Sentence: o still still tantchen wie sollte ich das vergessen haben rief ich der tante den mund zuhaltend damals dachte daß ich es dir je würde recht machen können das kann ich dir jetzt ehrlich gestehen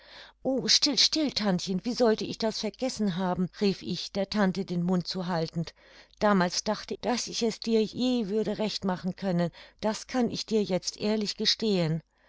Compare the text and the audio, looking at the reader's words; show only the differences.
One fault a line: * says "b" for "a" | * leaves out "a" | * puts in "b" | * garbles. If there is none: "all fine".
all fine